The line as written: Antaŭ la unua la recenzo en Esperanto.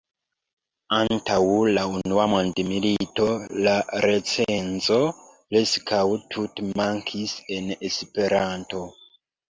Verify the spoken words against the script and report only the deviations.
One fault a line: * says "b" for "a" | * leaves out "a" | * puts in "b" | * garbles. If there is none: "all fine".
* puts in "mondmilito"
* puts in "preskaŭ tute mankis"